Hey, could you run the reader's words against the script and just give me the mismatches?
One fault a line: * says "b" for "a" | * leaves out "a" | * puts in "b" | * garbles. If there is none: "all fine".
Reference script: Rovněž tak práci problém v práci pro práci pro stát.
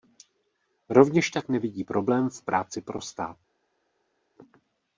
* says "nevidí" for "práci"
* leaves out "práci pro"